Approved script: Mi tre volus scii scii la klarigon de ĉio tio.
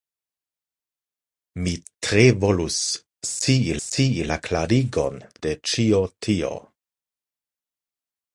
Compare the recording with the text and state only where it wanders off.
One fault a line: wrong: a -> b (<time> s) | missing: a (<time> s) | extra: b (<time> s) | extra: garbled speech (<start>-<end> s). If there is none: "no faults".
no faults